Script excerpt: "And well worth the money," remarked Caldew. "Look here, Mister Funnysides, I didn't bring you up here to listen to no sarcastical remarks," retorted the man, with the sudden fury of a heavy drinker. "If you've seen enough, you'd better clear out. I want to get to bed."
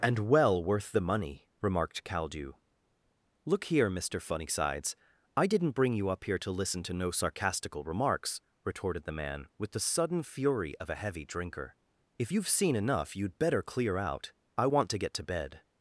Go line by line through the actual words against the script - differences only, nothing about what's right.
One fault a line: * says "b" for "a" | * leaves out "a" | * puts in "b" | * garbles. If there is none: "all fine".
all fine